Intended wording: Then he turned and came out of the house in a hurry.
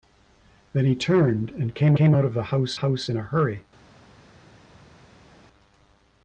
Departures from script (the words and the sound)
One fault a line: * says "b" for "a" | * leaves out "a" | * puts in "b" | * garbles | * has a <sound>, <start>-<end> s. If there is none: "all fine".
* puts in "came"
* puts in "house"